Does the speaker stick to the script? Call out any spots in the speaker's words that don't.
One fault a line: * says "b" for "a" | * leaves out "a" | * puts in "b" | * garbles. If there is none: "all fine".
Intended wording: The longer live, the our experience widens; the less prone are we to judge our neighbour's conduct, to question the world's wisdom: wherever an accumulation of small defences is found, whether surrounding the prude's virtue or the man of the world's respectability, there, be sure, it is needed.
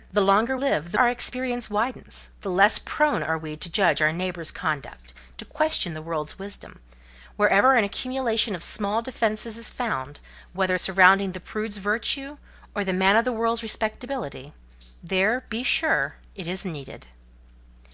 all fine